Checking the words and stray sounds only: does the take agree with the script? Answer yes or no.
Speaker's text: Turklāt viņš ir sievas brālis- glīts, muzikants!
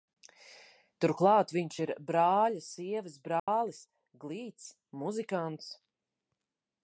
no